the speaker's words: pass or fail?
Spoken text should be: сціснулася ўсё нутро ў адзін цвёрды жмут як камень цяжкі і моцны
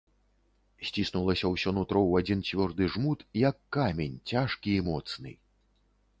pass